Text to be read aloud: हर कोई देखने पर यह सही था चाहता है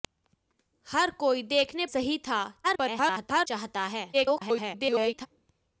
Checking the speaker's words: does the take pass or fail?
fail